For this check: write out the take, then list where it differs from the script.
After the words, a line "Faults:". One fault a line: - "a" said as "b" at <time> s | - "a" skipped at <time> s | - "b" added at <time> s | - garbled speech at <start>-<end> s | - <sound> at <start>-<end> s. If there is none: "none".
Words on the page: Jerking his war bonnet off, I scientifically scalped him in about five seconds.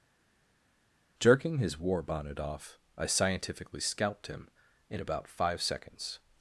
Jerking his war bonnet off, I scientifically scalped him in about five seconds.
Faults:
none